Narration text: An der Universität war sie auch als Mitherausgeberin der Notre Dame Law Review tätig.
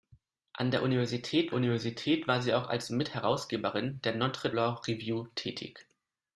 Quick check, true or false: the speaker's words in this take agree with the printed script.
false